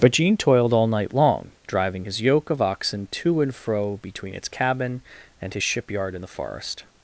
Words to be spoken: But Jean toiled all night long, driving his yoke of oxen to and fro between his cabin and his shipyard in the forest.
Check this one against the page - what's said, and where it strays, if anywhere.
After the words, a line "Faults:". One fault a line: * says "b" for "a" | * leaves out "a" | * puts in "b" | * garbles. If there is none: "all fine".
But Jean toiled all night long, driving his yoke of oxen to and fro between its cabin and his shipyard in the forest.
Faults:
* says "its" for "his"